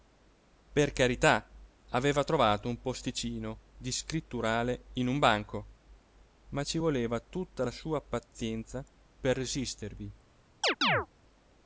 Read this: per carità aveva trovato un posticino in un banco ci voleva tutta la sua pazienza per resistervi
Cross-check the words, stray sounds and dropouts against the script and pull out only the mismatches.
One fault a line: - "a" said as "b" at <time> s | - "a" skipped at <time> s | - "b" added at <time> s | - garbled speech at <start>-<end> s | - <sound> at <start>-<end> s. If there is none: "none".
- "di scritturale" added at 3.8 s
- "ma" added at 6.5 s
- chirp at 10.6-11.1 s